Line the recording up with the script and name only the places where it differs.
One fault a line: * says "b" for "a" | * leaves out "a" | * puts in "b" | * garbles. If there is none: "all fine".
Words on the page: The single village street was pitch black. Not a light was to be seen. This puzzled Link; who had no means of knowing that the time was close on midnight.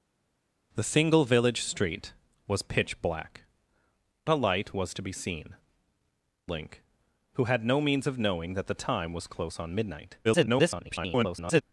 * leaves out "Not"
* leaves out "This puzzled"
* garbles